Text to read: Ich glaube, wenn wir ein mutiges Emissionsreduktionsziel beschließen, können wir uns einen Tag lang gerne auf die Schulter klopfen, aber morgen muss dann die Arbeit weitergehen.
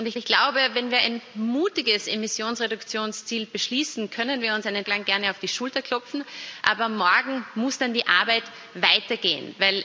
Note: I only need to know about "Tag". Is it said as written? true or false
false